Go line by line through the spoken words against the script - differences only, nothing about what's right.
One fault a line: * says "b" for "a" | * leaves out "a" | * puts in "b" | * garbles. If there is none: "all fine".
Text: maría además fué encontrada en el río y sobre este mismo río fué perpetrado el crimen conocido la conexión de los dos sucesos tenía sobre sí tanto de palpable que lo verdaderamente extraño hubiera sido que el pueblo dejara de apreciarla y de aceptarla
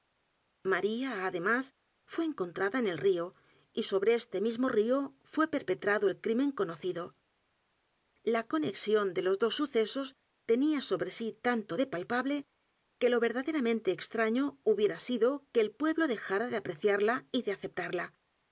all fine